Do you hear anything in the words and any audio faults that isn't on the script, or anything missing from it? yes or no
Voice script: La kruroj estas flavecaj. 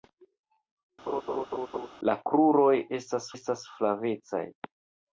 yes